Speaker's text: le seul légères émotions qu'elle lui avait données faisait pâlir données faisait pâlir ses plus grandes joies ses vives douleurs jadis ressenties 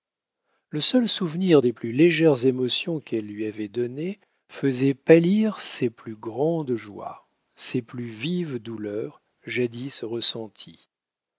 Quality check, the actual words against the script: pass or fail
fail